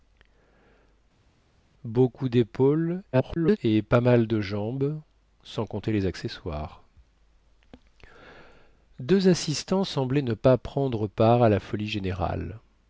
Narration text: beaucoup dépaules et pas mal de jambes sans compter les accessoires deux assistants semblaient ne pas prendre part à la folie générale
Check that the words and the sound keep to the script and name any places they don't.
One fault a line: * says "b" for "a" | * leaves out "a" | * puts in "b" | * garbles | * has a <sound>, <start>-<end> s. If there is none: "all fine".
* garbles